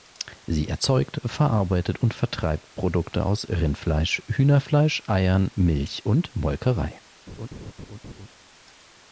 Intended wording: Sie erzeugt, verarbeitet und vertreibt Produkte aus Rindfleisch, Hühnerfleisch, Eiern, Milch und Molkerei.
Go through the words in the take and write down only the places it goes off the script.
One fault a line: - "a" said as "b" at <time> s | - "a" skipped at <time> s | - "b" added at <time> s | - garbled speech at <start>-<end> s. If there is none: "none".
none